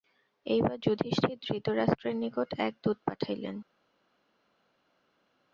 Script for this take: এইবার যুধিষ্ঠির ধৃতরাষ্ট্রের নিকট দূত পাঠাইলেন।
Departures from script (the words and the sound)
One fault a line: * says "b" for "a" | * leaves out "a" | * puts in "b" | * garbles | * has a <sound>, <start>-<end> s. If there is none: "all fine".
* puts in "এক"